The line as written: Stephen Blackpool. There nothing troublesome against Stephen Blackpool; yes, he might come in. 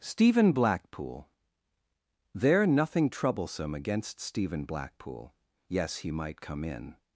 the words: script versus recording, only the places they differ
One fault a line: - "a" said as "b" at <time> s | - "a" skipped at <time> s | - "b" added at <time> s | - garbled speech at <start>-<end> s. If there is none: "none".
none